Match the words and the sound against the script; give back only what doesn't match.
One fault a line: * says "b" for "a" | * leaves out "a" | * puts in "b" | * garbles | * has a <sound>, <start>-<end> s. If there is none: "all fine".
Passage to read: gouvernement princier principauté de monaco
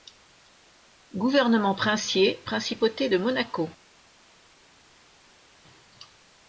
all fine